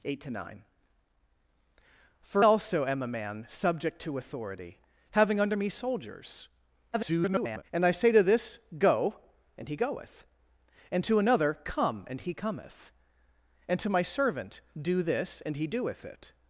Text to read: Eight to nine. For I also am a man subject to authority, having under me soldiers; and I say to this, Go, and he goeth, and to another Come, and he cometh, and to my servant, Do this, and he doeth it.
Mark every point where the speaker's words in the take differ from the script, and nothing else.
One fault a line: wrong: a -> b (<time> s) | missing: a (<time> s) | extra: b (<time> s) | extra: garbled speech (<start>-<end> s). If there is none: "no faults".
missing: I (2.5 s)
extra: garbled speech (6.9-7.6 s)